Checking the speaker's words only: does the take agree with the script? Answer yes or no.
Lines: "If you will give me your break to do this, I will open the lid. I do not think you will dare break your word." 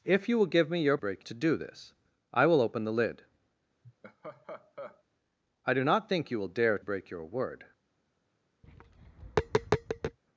yes